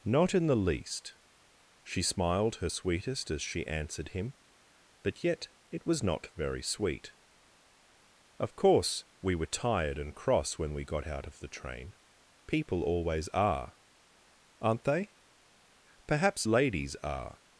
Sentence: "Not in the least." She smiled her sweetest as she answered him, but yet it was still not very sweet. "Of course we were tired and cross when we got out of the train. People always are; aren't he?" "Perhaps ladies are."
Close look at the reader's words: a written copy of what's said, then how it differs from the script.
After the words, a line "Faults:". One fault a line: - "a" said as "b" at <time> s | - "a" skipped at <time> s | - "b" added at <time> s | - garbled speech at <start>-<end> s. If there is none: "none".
"Not in the least." She smiled her sweetest as she answered him, but yet it was not very sweet. "Of course we were tired and cross when we got out of the train. People always are; aren't they?" "Perhaps ladies are."
Faults:
- "still" skipped at 6.0 s
- "he" said as "they" at 14.8 s